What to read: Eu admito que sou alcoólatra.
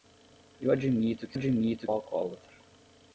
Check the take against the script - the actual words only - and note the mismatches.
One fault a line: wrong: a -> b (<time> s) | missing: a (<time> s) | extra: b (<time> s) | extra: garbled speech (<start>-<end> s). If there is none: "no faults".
wrong: sou -> admito (1.3 s)